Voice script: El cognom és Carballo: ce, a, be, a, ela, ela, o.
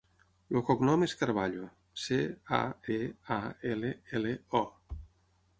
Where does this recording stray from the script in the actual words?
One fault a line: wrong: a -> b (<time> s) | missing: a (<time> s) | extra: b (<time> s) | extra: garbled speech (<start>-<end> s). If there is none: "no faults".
no faults